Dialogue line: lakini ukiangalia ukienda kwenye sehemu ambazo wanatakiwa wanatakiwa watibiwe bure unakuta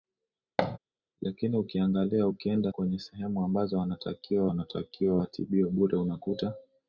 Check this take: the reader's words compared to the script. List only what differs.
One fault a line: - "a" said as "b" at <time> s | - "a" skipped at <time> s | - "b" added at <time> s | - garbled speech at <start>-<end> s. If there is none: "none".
none